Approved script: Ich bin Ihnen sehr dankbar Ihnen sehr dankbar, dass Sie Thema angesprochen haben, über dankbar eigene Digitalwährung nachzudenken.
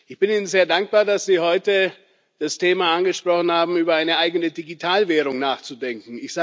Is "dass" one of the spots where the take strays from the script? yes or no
yes